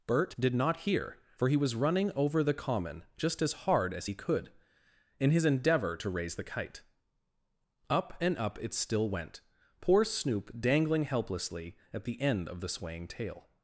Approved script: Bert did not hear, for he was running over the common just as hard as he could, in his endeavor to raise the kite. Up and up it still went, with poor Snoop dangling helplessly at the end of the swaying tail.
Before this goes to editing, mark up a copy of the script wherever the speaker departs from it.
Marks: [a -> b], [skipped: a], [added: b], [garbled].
Bert did not hear, for he was running over the common just as hard as he could, in his endeavor to raise the kite. Up and up it still went, [skipped: with] poor Snoop dangling helplessly at the end of the swaying tail.